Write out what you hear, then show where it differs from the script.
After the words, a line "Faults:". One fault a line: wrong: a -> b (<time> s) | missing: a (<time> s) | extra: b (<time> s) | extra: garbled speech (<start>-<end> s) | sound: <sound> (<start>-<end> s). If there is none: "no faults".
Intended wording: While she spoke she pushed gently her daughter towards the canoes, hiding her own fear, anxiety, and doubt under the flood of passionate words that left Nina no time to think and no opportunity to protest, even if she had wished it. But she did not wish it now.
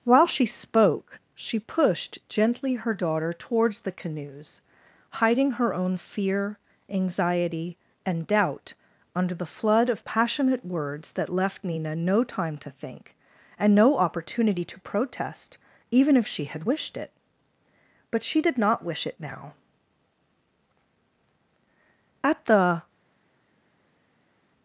While she spoke she pushed gently her daughter towards the canoes, hiding her own fear, anxiety, and doubt under the flood of passionate words that left Nina no time to think and no opportunity to protest, even if she had wished it. But she did not wish it now. At the
Faults:
extra: At the (22.2 s)